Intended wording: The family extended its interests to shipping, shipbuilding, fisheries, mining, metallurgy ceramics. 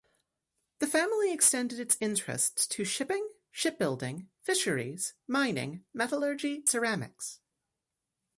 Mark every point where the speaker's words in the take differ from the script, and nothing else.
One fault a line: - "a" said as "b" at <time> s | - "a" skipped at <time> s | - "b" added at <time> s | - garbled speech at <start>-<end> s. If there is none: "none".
none